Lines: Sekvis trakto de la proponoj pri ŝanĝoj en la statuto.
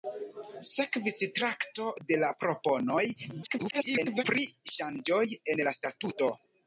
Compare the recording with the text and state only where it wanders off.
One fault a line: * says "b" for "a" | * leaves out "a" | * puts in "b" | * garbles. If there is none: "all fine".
* garbles